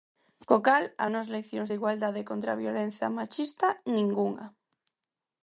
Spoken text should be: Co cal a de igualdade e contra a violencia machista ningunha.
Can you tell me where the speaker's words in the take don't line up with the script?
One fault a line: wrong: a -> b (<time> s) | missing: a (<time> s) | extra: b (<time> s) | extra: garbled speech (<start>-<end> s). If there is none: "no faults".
extra: nós leccións (1.1 s)